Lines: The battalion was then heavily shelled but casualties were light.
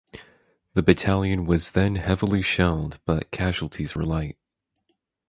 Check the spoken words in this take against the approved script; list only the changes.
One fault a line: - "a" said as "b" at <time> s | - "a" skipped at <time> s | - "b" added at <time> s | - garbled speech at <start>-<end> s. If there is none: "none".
none